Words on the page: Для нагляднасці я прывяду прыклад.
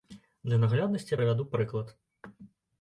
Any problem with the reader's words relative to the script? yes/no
no